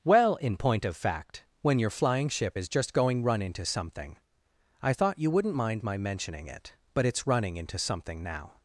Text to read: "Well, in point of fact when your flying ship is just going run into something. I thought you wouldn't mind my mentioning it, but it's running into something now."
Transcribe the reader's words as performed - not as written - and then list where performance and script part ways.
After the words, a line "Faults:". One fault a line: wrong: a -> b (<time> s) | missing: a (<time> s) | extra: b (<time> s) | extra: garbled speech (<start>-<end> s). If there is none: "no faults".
"Well, in point of fact when your flying ship is just going run into something. I thought you wouldn't mind my mentioning it, but it's running into something now."
Faults:
no faults